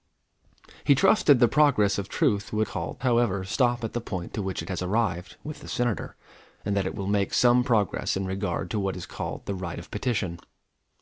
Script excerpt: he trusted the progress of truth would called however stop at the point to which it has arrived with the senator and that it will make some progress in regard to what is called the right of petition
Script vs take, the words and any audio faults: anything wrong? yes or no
no